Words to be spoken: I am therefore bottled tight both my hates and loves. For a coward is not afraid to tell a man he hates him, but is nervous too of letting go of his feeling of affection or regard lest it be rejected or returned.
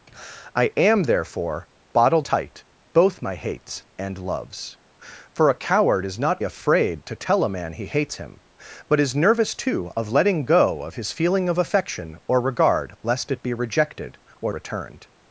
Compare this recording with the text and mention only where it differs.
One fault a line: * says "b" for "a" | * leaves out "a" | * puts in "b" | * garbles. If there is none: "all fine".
all fine